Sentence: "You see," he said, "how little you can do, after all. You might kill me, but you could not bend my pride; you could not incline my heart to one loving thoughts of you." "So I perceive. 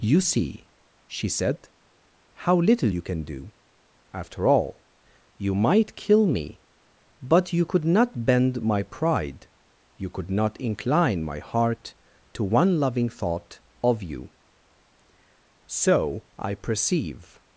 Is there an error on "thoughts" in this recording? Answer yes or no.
yes